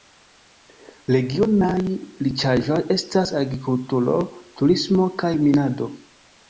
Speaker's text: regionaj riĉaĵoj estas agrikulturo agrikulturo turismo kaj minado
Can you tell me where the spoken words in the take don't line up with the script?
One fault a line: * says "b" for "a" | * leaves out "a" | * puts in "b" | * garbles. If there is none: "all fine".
* leaves out "agrikulturo"